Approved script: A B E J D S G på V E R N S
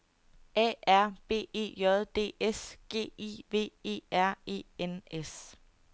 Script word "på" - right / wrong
wrong